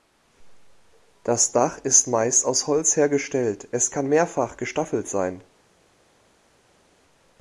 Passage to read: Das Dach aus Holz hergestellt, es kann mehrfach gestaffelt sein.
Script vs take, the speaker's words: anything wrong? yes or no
yes